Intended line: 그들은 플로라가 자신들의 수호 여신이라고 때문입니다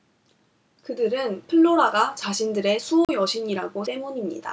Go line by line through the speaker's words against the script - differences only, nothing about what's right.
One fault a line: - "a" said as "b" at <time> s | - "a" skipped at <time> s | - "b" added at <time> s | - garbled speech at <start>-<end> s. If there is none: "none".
none